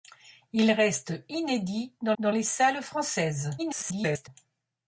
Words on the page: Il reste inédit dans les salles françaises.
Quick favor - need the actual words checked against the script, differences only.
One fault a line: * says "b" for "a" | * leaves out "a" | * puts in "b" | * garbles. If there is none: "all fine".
* puts in "dans"
* garbles